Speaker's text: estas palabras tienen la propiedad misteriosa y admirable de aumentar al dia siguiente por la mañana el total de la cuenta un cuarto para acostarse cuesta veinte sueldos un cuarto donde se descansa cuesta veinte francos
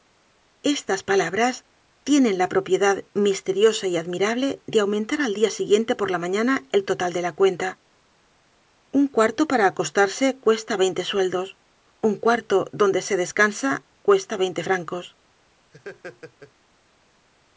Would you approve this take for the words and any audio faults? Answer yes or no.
no